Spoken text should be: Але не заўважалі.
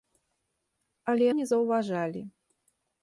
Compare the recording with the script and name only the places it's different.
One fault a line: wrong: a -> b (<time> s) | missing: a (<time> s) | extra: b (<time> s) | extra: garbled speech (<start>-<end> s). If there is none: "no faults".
no faults